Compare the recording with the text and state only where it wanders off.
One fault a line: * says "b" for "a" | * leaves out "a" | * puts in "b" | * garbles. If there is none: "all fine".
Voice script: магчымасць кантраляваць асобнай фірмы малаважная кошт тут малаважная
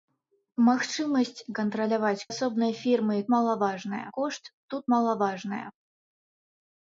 all fine